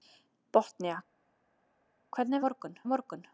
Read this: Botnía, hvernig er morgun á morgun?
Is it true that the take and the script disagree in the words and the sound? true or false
false